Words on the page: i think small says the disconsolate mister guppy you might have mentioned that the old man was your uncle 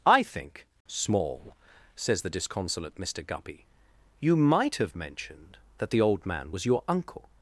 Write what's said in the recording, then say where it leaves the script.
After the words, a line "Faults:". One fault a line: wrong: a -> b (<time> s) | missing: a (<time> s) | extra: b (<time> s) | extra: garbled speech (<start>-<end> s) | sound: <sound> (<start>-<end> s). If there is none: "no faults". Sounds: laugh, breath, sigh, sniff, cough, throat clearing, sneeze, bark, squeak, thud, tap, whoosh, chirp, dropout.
i think small says the disconsolate mister guppy you might have mentioned that the old man was your uncle
Faults:
no faults